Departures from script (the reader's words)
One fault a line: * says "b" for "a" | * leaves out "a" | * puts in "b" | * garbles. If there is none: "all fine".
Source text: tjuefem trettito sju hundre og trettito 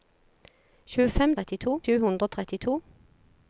all fine